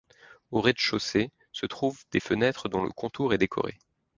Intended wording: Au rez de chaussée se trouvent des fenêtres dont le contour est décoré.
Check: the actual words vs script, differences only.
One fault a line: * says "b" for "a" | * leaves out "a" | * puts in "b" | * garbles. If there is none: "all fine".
all fine